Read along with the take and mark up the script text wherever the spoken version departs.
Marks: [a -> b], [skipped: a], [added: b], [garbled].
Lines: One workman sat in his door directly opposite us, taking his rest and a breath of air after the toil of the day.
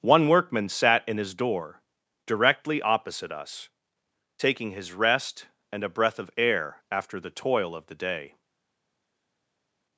One workman sat in his door directly opposite us, taking his rest and a breath of air after the toil of the day.